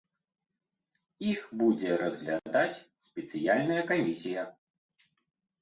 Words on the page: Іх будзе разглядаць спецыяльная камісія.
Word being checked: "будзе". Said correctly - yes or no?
yes